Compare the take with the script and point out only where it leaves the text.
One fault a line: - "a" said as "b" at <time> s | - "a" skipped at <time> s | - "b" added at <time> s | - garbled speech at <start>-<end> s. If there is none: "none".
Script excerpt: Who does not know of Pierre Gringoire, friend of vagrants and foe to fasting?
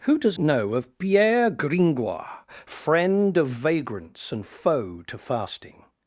- "not" skipped at 0.4 s